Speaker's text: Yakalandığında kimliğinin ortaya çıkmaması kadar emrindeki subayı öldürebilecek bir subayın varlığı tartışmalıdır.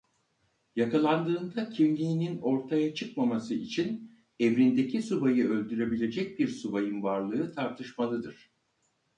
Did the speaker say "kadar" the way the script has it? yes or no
no